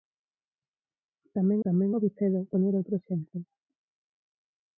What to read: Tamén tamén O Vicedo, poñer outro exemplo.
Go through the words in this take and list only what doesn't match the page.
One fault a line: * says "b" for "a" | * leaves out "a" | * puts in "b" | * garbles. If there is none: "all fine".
all fine